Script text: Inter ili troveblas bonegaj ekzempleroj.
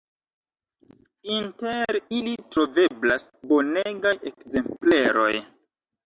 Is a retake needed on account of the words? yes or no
no